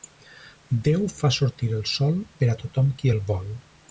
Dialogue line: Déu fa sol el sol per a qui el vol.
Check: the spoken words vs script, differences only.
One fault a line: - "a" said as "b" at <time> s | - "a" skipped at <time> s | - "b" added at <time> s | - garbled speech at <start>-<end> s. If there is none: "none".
- "sol" said as "sortir" at 1.4 s
- "tothom" added at 2.6 s